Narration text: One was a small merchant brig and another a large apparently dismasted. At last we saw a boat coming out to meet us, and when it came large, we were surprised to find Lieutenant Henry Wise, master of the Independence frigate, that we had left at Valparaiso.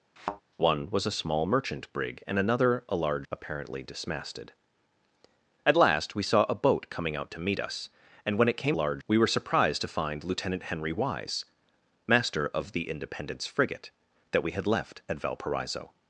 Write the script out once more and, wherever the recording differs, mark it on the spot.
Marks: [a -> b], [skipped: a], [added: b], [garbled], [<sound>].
[thud] One was a small merchant brig and another a large apparently dismasted. At last we saw a boat coming out to meet us, and when it came large, we were surprised to find Lieutenant Henry Wise, master of the Independence frigate, that we had left at Valparaiso.